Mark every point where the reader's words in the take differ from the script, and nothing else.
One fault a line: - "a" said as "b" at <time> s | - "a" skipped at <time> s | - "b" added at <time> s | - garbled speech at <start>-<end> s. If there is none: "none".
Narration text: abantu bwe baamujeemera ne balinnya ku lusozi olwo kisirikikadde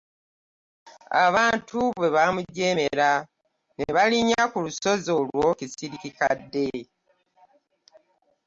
none